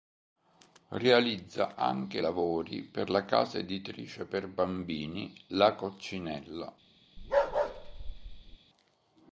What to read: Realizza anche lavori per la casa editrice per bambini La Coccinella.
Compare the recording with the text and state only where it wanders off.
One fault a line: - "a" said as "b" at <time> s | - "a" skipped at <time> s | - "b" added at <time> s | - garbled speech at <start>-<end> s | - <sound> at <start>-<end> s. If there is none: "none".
- bark at 7.2-8.6 s